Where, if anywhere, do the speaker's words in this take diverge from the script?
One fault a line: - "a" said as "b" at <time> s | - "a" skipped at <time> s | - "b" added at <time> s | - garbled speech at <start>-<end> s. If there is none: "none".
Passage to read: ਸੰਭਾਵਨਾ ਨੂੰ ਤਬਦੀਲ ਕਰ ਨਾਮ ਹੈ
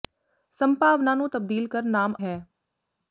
none